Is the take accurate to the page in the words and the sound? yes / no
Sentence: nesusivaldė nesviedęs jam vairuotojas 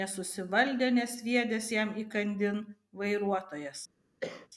no